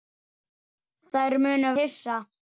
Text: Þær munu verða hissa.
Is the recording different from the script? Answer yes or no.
yes